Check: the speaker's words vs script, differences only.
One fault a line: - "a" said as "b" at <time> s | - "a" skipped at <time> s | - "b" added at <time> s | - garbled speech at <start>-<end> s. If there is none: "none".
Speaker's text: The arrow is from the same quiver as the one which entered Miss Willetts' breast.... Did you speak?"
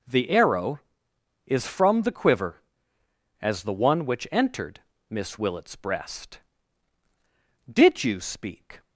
- "same" skipped at 2.1 s